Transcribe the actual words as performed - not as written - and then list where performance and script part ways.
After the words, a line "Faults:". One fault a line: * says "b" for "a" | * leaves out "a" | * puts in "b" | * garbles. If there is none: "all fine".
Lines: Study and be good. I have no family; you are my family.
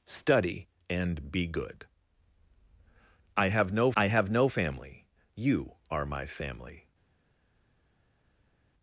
Study and be good. I have no I have no family; you are my family.
Faults:
* puts in "I have no"